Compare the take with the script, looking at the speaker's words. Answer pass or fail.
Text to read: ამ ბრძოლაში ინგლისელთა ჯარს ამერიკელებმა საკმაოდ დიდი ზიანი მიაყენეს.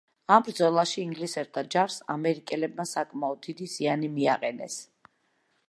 pass